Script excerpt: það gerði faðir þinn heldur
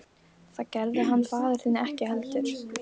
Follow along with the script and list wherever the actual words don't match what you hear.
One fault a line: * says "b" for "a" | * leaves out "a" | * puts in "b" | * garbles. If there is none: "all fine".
* puts in "hann"
* puts in "ekki"